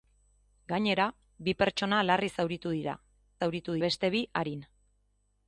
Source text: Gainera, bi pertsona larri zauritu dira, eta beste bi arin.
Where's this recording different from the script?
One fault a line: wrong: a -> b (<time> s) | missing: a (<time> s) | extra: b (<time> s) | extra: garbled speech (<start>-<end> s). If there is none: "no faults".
wrong: eta -> zauritu (3.4 s)